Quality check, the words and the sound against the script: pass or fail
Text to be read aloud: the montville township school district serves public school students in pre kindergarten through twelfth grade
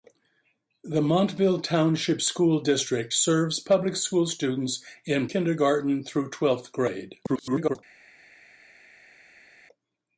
fail